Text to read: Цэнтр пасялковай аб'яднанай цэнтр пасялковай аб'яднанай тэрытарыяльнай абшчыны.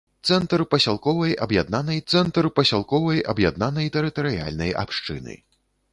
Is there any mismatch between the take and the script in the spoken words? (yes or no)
no